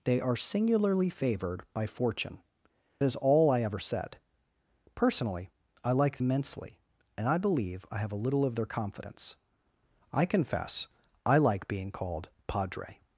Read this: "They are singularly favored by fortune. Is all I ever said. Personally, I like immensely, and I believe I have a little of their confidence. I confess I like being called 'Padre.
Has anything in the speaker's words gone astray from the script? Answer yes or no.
no